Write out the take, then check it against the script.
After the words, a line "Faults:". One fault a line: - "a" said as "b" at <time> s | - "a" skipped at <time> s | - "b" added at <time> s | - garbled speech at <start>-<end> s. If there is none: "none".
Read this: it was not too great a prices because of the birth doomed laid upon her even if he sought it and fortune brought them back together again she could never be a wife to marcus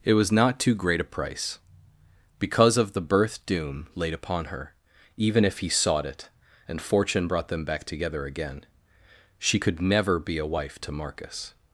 it was not too great a price because of the birth doom laid upon her even if he sought it and fortune brought them back together again she could never be a wife to marcus
Faults:
- "prices" said as "price" at 1.0 s
- "doomed" said as "doom" at 3.5 s